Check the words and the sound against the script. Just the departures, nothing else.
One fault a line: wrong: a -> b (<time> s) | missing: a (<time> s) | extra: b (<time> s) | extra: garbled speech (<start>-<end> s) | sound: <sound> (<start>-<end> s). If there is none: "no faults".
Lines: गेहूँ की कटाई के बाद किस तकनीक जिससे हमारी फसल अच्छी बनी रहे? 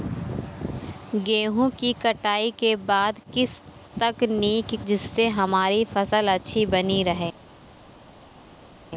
no faults